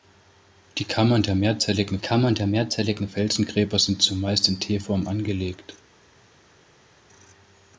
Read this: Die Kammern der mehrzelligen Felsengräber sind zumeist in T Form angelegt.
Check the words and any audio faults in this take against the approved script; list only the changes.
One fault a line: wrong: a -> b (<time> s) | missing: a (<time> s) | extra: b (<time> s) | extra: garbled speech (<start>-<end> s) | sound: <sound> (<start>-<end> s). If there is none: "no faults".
extra: Kammern der mehrzelligen (2.0 s)